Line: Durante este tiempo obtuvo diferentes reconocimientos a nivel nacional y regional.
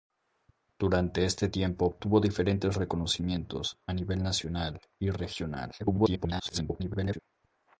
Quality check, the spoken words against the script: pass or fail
fail